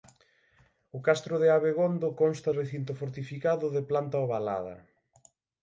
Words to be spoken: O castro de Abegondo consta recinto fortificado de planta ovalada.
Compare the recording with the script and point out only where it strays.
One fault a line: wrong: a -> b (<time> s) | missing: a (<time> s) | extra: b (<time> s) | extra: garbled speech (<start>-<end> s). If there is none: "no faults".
no faults